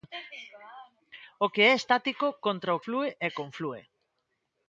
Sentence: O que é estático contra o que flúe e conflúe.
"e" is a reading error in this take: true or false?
false